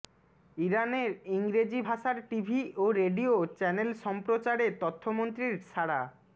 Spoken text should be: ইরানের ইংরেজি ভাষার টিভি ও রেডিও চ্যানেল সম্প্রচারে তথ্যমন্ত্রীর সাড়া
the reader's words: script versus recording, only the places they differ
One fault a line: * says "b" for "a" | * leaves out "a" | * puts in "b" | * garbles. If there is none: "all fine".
all fine